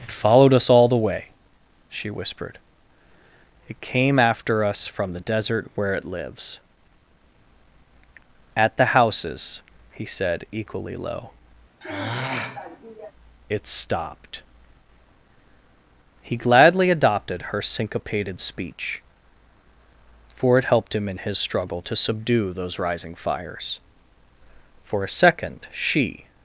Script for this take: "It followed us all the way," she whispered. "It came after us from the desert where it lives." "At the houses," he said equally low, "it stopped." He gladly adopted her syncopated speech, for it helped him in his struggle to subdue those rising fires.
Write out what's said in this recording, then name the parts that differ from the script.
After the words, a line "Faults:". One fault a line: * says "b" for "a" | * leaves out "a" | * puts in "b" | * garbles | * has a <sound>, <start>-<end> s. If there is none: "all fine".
"It followed us all the way," she whispered. "It came after us from the desert where it lives." "At the houses," he said equally low, "it stopped." He gladly adopted her syncopated speech, for it helped him in his struggle to subdue those rising fires. For a second she
Faults:
* has a sigh, 11.8-13.1 s
* puts in "For a second she"